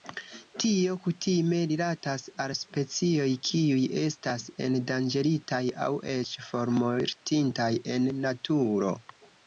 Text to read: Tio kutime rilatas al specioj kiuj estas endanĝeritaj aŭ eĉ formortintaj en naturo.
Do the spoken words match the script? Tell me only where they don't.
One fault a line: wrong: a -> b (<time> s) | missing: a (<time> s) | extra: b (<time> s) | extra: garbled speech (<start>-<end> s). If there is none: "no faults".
no faults